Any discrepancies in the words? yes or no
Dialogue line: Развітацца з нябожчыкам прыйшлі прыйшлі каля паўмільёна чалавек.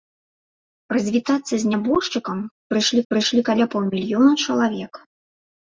no